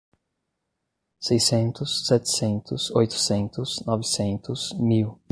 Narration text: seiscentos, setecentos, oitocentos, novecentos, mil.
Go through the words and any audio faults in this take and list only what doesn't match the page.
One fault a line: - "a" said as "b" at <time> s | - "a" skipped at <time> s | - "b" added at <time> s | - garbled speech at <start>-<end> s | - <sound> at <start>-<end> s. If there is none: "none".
none